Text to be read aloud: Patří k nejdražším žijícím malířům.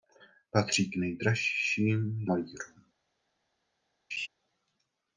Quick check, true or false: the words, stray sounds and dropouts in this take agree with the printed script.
false